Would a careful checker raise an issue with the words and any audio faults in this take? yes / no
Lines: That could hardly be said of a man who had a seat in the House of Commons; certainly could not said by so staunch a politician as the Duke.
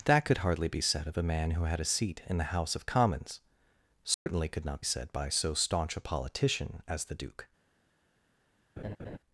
yes